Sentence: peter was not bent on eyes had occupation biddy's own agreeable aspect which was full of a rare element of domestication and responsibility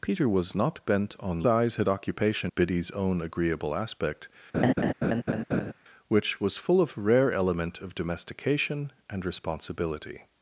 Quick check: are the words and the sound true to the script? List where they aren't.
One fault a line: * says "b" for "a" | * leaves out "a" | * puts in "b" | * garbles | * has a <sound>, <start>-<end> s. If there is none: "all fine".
* has a laugh, 4.5-5.7 s